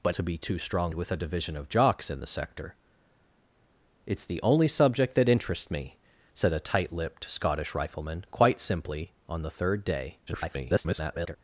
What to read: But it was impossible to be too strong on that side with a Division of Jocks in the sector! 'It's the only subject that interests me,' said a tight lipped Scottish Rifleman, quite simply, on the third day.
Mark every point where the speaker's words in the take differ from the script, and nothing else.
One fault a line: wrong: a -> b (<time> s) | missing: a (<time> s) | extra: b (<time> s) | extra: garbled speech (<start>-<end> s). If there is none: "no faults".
missing: it was impossible (0.1 s)
missing: on that side (0.9 s)
extra: garbled speech (10.3-11.4 s)